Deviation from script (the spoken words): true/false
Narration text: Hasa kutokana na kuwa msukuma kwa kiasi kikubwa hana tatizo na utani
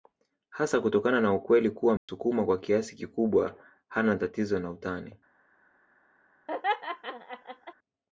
true